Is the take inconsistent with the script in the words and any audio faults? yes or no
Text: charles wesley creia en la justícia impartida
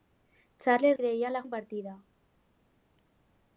yes